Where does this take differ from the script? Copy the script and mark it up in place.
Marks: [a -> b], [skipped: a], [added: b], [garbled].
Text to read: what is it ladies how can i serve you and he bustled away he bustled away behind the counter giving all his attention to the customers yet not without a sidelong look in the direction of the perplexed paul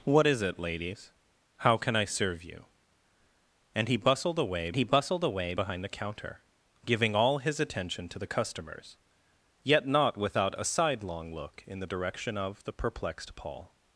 what is it ladies how can i serve you and he bustled away he bustled away behind the counter giving all his attention to the customers yet not without a sidelong look in the direction of the perplexed paul